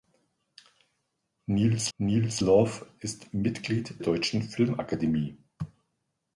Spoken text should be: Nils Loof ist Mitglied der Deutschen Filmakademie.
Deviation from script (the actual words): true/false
true